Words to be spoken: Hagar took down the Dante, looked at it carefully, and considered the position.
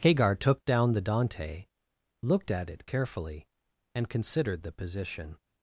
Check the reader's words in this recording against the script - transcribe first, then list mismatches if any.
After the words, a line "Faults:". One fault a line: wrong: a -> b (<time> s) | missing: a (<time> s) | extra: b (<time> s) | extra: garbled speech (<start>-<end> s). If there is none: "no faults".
Hagar took down the Dante, looked at it carefully, and considered the position.
Faults:
no faults